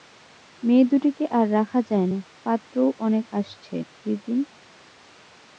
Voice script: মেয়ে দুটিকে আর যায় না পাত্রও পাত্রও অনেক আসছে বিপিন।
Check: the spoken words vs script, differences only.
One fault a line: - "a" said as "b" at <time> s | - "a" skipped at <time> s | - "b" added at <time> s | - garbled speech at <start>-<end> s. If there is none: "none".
- "রাখা" added at 1.5 s
- "পাত্রও" skipped at 2.9 s